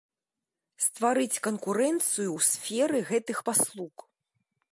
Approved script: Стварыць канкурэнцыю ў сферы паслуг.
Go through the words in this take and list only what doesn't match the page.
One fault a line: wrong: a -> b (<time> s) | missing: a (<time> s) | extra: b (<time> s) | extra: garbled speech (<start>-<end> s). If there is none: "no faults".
extra: гэтых (3.1 s)